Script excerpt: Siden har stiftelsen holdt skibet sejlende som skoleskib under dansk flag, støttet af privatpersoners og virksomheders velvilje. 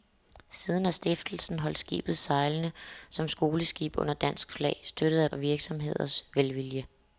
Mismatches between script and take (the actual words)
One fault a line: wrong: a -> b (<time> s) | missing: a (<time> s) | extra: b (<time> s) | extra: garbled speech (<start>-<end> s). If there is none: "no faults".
missing: privatpersoners (5.3 s)